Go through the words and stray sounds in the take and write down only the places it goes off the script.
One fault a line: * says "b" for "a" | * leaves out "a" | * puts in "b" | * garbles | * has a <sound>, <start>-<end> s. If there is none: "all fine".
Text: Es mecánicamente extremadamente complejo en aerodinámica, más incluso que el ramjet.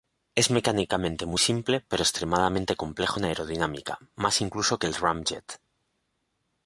* puts in "muy simple pero"